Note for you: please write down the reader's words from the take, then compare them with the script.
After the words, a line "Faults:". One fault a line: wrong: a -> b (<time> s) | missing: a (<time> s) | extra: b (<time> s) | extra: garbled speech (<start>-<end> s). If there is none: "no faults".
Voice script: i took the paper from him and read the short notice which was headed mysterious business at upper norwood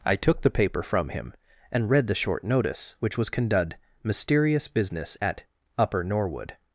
i took the paper from him and read the short notice which was condud mysterious business at upper norwood
Faults:
wrong: headed -> condud (3.3 s)